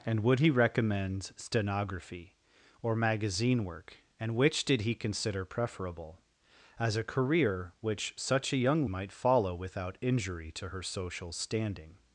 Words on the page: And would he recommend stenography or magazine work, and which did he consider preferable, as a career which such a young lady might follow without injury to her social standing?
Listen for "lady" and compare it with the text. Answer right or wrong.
wrong